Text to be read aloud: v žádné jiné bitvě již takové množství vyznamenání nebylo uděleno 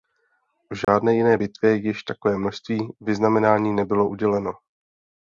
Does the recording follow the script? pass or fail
pass